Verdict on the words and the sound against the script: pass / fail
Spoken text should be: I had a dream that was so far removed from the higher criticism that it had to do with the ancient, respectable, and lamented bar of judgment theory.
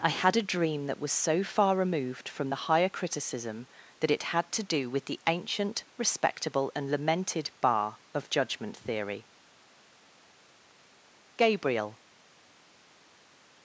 fail